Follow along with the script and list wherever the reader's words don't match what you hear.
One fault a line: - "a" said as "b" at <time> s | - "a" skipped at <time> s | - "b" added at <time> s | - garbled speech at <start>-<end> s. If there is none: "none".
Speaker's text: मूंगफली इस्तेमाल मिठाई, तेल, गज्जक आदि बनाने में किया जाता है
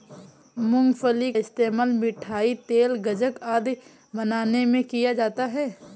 none